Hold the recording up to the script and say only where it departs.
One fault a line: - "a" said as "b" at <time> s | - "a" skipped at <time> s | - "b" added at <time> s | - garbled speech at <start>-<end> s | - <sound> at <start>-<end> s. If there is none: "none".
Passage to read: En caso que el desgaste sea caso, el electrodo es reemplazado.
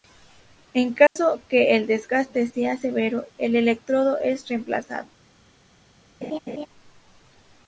- dropout at 1.1-1.2 s
- "caso" said as "severo" at 2.8 s
- laugh at 6.2-6.7 s